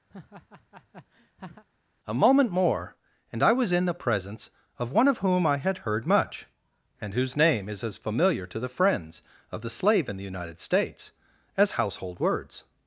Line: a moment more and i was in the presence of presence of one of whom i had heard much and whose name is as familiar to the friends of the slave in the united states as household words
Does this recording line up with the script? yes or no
no